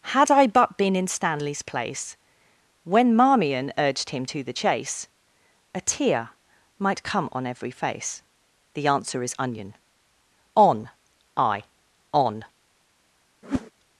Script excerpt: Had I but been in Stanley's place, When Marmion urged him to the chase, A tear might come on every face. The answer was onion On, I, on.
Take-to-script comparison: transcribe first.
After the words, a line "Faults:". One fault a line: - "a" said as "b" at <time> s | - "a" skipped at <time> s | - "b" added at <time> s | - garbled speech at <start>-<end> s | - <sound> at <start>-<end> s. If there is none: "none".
Had I but been in Stanley's place, When Marmion urged him to the chase, A tear might come on every face. The answer is onion On, I, on.
Faults:
- "was" said as "is" at 9.2 s
- whoosh at 13.4-13.7 s